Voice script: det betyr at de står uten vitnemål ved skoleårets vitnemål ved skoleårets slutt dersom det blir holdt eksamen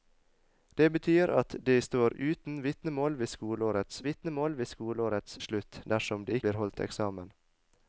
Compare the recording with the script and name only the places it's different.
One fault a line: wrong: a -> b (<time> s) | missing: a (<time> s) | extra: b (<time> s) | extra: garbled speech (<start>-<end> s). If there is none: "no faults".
no faults